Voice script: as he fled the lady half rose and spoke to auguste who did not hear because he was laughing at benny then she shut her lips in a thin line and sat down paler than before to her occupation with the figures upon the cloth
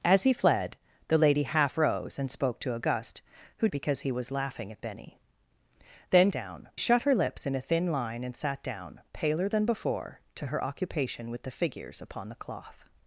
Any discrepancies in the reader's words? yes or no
yes